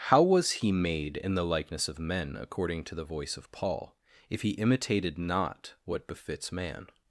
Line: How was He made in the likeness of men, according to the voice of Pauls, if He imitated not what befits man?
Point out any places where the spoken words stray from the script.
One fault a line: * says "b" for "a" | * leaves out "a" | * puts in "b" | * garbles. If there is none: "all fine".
* says "Paul" for "Pauls"